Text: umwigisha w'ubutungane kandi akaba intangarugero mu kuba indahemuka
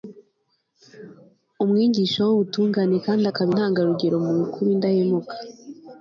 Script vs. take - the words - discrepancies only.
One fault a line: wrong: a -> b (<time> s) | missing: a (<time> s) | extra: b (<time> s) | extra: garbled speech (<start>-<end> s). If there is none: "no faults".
no faults